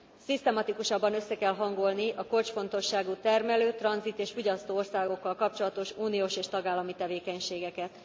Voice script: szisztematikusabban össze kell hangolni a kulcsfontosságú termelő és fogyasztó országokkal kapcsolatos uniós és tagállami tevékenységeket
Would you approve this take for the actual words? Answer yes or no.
no